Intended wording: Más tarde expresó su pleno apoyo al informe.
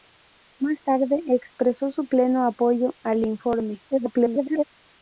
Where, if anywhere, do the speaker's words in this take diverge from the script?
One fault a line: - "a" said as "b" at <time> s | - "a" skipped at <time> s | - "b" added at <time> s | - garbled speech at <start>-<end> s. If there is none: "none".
- garbled speech at 3.9-4.6 s